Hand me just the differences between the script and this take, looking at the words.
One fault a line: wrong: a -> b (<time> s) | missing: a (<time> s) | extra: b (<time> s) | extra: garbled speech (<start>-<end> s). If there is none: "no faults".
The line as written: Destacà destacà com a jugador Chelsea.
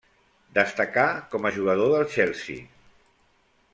missing: destacà (1.0 s)
extra: del (1.9 s)